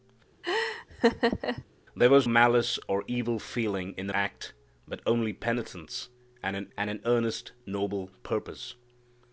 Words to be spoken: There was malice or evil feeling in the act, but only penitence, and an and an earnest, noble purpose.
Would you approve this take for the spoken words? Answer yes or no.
yes